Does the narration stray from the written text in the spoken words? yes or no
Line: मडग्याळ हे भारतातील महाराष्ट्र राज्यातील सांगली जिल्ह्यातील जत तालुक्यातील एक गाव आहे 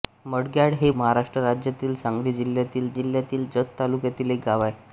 yes